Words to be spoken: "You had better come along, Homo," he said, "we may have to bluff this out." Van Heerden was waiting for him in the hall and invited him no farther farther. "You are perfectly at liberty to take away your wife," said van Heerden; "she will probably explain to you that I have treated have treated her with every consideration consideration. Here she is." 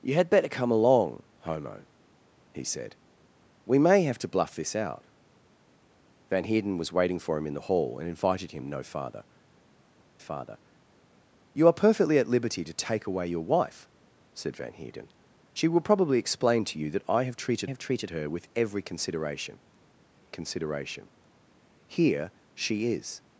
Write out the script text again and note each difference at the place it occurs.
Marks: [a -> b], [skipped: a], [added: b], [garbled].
"You had better come along, Homo," he said, "we may have to bluff this out." Van Heerden was waiting for him in the hall and invited him no farther farther. "You are perfectly at liberty to take away your wife," said van Heerden; "she will probably explain to you that I have treated have treated her with every consideration consideration. Here she is."